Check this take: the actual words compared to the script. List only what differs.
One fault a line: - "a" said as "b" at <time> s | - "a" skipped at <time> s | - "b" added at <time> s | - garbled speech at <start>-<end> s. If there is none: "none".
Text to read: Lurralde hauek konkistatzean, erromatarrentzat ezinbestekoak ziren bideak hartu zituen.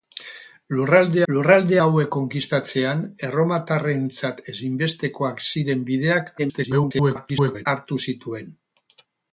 - "lurralde" added at 1.3 s
- garbled speech at 6.4-7.7 s